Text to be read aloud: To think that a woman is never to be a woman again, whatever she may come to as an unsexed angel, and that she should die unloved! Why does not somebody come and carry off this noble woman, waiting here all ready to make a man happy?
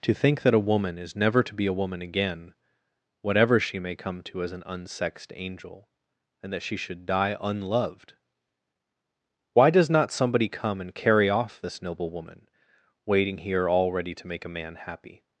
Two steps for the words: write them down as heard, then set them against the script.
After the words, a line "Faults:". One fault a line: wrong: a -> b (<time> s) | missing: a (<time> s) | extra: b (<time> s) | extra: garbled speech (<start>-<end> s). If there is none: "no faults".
To think that a woman is never to be a woman again, whatever she may come to as an unsexed angel, and that she should die unloved! Why does not somebody come and carry off this noble woman, waiting here all ready to make a man happy?
Faults:
no faults